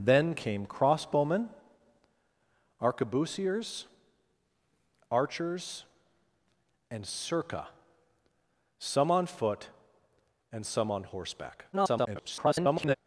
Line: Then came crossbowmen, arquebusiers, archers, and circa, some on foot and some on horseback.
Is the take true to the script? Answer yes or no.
no